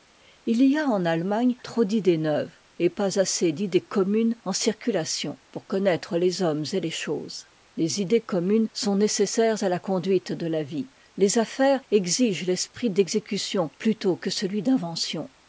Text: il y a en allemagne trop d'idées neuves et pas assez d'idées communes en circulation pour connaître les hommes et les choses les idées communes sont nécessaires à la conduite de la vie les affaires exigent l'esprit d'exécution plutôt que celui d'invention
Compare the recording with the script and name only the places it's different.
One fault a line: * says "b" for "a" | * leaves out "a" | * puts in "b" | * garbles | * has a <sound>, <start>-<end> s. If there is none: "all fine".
all fine